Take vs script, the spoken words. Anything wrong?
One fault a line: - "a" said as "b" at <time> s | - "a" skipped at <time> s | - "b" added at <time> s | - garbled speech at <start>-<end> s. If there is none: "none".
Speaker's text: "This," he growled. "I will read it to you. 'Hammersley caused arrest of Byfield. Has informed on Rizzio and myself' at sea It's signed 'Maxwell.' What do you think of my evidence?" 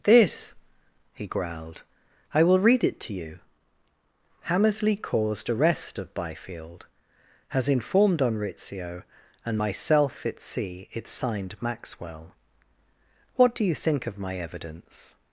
none